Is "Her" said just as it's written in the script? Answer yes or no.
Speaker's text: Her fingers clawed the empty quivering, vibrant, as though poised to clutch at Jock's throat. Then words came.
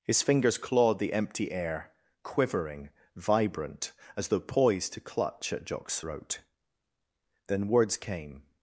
no